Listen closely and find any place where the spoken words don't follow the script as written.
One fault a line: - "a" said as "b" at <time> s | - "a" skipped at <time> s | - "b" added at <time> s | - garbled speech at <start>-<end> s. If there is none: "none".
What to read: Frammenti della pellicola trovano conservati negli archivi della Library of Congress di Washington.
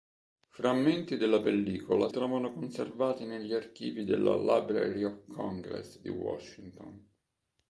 none